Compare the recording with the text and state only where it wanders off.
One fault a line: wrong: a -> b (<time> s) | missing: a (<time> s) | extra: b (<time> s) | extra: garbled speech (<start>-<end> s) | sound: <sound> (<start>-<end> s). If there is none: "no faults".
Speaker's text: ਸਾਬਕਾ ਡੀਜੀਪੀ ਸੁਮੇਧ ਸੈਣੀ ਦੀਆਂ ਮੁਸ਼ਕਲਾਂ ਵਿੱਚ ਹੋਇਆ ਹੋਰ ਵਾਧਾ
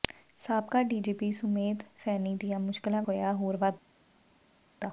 missing: ਵਿੱਚ (3.0 s)